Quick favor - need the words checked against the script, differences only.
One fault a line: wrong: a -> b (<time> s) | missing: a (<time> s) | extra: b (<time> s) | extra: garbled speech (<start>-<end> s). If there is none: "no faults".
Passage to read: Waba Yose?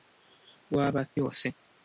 no faults